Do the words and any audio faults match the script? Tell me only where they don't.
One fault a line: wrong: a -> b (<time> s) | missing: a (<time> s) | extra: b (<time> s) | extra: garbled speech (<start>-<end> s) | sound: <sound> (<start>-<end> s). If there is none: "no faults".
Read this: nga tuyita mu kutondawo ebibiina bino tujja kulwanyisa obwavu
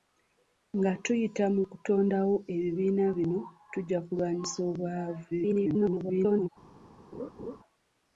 extra: garbled speech (5.3-6.5 s)
sound: laugh (7.1-7.6 s)